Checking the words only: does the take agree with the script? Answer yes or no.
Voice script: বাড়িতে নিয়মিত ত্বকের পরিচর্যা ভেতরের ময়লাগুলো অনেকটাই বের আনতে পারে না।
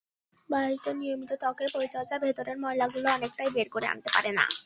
no